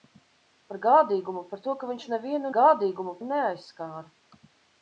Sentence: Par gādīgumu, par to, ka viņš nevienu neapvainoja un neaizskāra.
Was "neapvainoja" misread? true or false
true